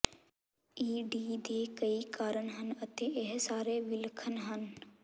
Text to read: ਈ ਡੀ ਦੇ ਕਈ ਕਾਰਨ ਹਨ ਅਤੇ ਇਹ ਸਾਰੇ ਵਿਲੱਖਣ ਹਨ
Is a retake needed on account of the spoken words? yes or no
no